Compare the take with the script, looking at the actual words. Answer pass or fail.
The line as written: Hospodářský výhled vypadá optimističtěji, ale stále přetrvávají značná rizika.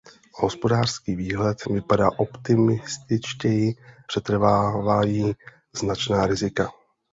fail